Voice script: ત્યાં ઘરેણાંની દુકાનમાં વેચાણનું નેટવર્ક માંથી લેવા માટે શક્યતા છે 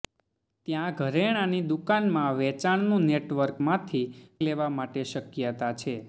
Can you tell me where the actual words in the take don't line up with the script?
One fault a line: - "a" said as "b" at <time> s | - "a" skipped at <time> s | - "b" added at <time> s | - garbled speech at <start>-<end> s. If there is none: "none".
none